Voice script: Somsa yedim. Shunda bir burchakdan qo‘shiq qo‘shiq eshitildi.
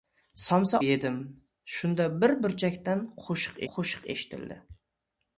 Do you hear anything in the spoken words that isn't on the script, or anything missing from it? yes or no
no